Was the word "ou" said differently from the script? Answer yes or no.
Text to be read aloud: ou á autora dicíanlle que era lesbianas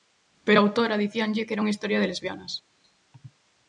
yes